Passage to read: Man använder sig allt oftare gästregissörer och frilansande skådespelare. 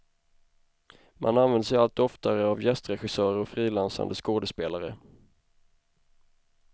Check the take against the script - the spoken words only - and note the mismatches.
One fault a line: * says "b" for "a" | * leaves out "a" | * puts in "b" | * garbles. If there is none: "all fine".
* puts in "av"